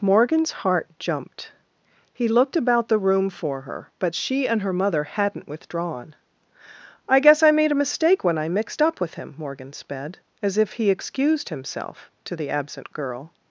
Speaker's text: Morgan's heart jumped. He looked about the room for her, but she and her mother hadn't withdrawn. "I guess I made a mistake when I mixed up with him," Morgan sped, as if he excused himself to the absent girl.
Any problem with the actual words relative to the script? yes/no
no